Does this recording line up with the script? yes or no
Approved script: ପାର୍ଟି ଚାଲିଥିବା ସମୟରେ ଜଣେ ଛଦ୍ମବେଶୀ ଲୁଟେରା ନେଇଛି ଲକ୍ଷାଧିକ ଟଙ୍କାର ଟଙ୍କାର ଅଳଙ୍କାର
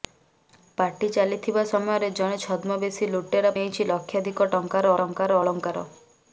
yes